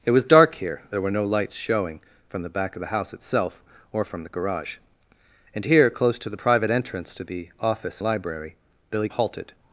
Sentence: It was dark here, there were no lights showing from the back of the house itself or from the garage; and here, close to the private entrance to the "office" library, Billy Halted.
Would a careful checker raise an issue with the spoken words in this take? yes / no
no